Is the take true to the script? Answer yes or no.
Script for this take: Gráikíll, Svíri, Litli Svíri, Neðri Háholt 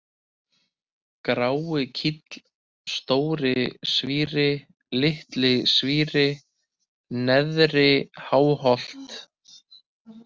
no